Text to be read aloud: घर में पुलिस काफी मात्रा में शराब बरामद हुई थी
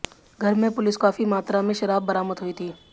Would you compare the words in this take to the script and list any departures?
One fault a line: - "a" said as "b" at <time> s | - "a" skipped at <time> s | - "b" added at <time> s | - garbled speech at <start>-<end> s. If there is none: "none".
none